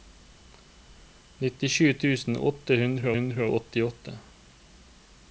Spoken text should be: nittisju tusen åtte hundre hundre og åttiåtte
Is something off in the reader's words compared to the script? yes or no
no